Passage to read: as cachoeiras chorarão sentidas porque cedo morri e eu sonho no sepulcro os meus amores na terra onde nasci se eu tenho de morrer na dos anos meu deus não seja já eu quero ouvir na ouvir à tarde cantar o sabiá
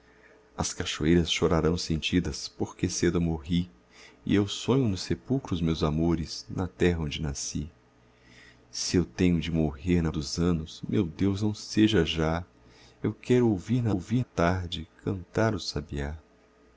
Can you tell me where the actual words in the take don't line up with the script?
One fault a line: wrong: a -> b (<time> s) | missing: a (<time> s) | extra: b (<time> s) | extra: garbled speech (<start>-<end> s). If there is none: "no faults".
no faults